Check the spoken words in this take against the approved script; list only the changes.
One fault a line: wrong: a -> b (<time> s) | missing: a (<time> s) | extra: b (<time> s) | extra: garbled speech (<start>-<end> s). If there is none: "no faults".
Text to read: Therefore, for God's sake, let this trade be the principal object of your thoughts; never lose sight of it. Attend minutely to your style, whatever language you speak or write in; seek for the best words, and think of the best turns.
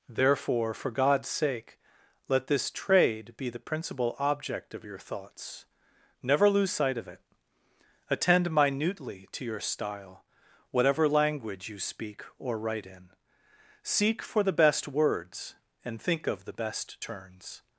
no faults